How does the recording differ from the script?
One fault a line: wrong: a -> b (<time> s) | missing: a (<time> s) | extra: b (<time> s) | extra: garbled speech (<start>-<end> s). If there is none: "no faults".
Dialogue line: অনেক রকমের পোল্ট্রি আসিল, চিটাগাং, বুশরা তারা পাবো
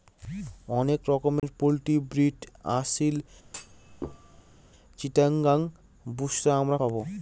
extra: ব্রিড (2.1 s)
wrong: তারা -> আমরা (6.6 s)